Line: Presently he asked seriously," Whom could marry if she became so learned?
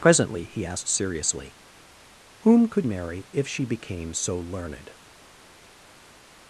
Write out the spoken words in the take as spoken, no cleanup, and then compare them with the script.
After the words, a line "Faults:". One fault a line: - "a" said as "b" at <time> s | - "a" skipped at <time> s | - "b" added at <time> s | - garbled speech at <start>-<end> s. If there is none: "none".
Presently he asked seriously," Whom could marry if she became so learned?
Faults:
none